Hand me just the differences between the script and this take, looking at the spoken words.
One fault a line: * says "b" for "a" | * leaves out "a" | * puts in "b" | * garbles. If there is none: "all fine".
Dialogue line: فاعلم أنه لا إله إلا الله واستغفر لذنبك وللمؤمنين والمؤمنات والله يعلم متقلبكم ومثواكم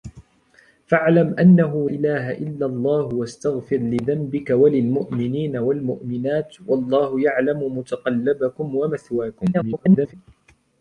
* leaves out "لا"
* garbles